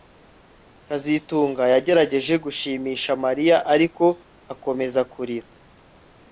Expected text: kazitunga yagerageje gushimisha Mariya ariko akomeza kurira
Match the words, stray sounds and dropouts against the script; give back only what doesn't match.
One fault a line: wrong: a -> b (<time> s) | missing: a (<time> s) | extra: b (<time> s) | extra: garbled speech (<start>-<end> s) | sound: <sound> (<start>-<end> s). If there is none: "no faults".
no faults